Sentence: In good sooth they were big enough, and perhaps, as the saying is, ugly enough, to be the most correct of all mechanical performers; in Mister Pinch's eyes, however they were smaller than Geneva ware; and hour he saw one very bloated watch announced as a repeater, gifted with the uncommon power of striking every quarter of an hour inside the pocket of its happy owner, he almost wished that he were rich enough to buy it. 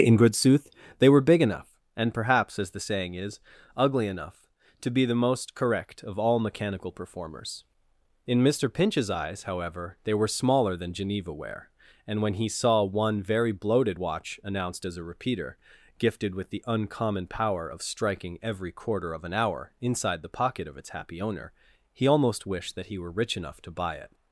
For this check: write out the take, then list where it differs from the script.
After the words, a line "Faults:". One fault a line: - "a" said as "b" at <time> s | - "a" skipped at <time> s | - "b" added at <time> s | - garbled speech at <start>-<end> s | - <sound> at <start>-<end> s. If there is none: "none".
In good sooth they were big enough, and perhaps, as the saying is, ugly enough, to be the most correct of all mechanical performers; in Mister Pinch's eyes, however they were smaller than Geneva ware; and when he saw one very bloated watch announced as a repeater, gifted with the uncommon power of striking every quarter of an hour inside the pocket of its happy owner, he almost wished that he were rich enough to buy it.
Faults:
- "hour" said as "when" at 12.2 s